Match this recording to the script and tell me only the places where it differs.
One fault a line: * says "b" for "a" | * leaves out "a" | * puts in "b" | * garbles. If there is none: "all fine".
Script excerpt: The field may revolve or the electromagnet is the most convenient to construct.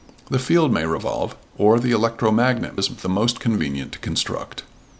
all fine